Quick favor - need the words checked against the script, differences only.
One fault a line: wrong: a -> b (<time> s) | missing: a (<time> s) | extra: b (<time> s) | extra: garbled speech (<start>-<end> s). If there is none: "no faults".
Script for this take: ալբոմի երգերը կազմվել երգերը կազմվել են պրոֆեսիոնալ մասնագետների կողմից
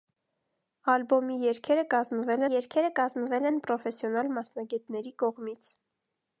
no faults